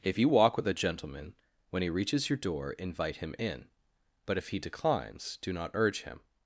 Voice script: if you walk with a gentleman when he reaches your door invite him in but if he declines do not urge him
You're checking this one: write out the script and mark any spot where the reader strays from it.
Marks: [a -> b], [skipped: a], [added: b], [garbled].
if you walk with a gentleman when he reaches your door invite him in but if he declines do not urge him